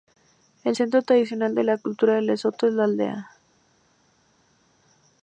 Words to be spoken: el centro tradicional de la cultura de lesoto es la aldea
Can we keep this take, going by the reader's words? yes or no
yes